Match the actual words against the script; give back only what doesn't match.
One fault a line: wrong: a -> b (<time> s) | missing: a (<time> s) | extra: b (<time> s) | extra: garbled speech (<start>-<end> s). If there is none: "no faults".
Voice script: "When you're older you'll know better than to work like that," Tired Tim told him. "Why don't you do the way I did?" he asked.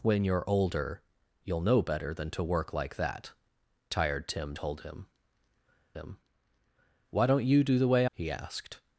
extra: him (5.9 s)
missing: I did (8.1 s)